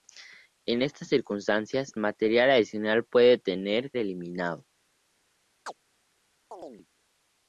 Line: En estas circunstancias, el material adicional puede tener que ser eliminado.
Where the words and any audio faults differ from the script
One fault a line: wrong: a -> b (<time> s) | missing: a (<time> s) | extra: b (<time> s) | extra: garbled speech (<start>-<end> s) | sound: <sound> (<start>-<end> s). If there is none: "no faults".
missing: el (1.9 s)
missing: que ser (3.9 s)
sound: chirp (5.7-5.8 s)
sound: chirp (6.5-6.9 s)